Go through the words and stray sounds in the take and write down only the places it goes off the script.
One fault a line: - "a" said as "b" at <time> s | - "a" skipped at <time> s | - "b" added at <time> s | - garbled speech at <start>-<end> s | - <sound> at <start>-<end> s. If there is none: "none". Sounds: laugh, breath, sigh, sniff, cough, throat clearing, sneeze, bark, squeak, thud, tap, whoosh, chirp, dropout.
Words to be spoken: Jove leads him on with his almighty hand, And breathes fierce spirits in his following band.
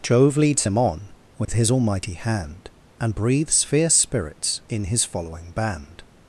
- dropout at 1.4-1.5 s